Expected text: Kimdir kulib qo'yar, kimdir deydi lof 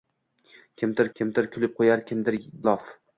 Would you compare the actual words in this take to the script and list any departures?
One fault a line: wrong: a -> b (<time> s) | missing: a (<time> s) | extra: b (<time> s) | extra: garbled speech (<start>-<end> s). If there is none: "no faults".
extra: kimdir (1.2 s)
missing: deydi (2.4 s)